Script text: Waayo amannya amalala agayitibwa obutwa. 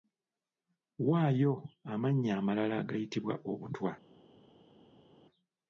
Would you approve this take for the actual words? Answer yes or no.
yes